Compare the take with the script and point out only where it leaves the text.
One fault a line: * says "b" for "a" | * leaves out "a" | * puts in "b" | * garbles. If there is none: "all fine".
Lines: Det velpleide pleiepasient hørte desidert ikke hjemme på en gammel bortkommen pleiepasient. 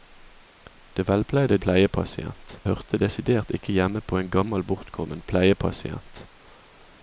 all fine